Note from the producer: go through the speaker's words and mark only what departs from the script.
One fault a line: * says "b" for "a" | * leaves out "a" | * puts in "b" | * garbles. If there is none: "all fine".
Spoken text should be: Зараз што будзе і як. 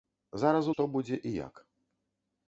all fine